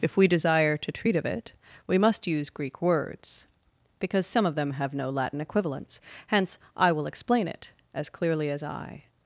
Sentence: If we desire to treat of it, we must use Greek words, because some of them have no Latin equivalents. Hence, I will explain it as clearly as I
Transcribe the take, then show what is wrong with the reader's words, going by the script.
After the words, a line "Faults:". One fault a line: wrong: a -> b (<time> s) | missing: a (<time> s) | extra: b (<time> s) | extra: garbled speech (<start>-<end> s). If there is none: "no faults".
If we desire to treat of it, we must use Greek words, because some of them have no Latin equivalents. Hence, I will explain it as clearly as I
Faults:
no faults